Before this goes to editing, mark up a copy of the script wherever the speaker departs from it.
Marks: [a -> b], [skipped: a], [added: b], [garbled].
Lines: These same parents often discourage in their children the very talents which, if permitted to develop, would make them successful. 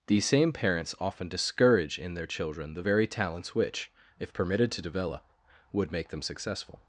These same parents often discourage in their children the very talents which, if permitted to develop, would make them successful.